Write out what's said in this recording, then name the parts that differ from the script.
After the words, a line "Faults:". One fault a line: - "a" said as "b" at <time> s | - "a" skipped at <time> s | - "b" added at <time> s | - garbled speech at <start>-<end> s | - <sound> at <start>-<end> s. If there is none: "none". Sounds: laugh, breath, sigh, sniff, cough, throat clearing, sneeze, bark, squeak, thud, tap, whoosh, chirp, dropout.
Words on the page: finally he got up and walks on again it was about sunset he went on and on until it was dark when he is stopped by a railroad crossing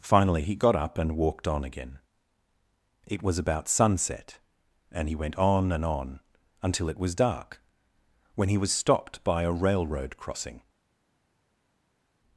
finally he got up and walked on again it was about sunset and he went on and on until it was dark when he was stopped by a railroad crossing
Faults:
- "walks" said as "walked" at 1.1 s
- "and" added at 4.9 s
- "is" said as "was" at 8.6 s